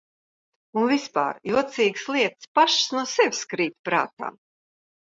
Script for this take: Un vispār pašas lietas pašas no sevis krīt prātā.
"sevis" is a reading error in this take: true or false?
false